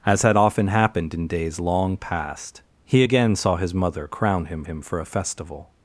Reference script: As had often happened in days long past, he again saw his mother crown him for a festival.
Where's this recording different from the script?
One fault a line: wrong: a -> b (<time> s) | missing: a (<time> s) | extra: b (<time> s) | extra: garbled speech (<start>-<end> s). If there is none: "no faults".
extra: him (4.6 s)